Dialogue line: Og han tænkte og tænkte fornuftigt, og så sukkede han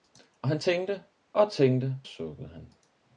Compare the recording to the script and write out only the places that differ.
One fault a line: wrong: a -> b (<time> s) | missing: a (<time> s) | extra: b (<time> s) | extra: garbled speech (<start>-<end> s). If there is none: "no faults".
missing: fornuftigt og så (2.0 s)